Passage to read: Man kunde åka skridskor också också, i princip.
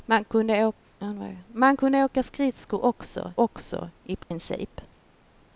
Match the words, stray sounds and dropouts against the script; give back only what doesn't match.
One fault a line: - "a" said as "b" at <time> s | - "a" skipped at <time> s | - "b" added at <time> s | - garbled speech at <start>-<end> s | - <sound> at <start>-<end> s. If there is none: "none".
- dropout at 4.2-4.3 s